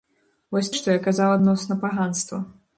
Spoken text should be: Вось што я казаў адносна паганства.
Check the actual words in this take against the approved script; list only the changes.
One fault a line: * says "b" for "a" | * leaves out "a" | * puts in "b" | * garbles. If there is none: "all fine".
all fine